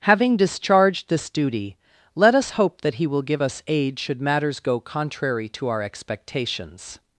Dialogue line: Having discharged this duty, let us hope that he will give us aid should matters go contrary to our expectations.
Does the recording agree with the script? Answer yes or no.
yes